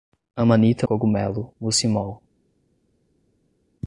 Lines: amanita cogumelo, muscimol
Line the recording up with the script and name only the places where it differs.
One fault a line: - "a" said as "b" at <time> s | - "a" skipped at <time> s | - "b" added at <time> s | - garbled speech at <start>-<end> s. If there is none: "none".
none